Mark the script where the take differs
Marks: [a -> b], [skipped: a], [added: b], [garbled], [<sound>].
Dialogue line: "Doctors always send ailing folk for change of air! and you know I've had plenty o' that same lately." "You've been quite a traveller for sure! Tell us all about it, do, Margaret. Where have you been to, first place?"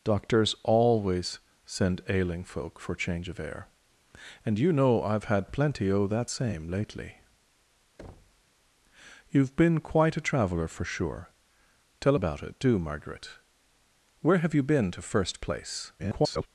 "Doctors always send ailing folk for change of air! and you know I've had plenty o' that same lately." [thud] "You've been quite a traveller for sure! Tell [skipped: us all] about it, do, Margaret. Where have you been to, first place?" [garbled]